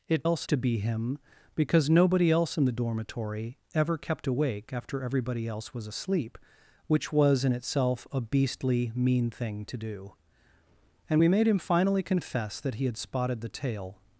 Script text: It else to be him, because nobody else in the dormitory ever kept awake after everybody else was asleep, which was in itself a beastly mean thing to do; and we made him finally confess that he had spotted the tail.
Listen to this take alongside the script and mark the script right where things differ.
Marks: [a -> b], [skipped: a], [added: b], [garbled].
It else to be him, because nobody else in the dormitory ever kept awake after everybody else was asleep, which was in itself a beastly mean thing to do; and we made him finally confess that he had spotted the tail.